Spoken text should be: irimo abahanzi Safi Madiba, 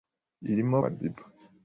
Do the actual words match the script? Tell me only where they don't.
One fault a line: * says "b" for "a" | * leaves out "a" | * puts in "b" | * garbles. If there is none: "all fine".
* leaves out "abahanzi Safi"